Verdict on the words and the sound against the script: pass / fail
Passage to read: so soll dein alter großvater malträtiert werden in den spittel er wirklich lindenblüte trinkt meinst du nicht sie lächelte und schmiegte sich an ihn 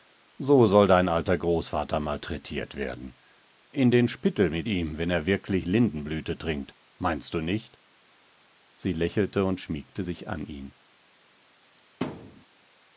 fail